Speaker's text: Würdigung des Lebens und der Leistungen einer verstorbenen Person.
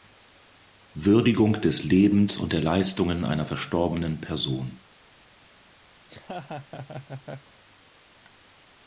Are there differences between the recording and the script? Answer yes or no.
no